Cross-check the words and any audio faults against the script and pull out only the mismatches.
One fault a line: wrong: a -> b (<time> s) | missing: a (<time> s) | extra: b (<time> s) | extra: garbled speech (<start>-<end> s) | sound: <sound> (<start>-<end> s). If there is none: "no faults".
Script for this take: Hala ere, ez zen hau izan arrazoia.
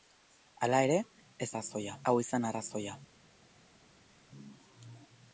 wrong: zen -> arrazoia (1.5 s)